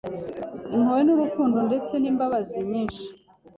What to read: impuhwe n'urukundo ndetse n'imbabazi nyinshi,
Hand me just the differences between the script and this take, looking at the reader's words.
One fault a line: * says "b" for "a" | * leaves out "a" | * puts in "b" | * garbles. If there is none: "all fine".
all fine